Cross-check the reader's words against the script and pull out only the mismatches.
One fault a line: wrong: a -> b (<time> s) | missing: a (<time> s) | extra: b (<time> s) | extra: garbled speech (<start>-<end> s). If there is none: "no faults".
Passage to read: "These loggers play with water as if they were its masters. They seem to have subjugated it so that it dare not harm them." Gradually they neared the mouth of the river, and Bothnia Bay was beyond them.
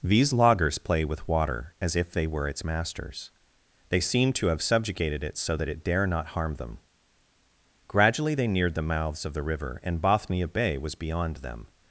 wrong: mouth -> mouths (8.8 s)